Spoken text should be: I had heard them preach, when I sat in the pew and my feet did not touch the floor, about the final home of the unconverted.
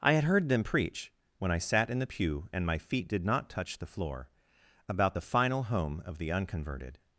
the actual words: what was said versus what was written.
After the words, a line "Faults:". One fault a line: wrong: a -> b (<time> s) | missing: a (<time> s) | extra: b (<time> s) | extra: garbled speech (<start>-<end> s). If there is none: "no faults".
I had heard them preach, when I sat in the pew and my feet did not touch the floor, about the final home of the unconverted.
Faults:
no faults